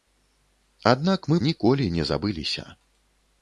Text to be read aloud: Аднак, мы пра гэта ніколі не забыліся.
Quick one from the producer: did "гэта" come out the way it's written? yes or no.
no